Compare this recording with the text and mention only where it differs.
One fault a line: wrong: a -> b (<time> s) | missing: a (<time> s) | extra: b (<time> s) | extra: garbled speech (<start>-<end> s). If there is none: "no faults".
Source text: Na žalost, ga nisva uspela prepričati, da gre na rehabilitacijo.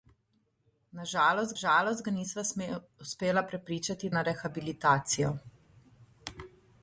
extra: žalost (1.6 s)
missing: da gre (4.1 s)